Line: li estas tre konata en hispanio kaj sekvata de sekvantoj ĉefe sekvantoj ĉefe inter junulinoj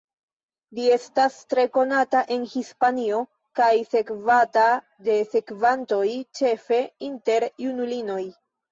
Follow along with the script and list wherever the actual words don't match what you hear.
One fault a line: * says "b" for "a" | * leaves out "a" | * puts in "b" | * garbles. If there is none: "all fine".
* leaves out "sekvantoj ĉefe"